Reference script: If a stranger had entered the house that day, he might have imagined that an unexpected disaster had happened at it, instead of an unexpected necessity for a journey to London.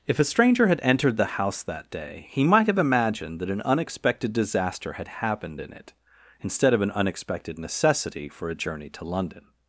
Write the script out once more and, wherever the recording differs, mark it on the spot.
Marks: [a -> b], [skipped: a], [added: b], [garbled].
If a stranger had entered the house that day, he might have imagined that an unexpected disaster had happened [at -> in] it, instead of an unexpected necessity for a journey to London.